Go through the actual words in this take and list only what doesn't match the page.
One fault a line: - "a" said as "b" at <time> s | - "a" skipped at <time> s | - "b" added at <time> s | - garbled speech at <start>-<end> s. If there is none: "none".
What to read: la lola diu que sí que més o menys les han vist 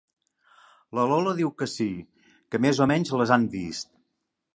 none